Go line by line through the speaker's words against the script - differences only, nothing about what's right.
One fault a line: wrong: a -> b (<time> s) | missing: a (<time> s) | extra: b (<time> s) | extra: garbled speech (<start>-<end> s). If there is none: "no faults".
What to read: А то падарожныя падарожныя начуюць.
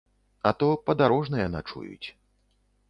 missing: падарожныя (1.5 s)